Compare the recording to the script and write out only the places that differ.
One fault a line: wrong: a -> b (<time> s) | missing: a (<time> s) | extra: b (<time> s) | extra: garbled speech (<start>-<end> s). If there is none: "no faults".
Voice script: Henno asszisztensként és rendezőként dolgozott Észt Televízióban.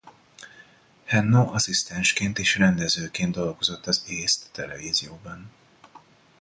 extra: az (3.9 s)